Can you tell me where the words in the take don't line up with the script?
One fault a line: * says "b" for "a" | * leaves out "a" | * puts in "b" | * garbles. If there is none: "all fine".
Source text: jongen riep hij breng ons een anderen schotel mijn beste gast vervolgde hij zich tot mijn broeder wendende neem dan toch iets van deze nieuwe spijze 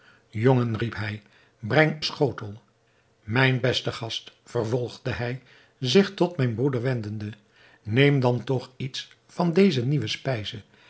* leaves out "ons een anderen"